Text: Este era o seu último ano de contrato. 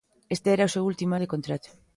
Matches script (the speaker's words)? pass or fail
fail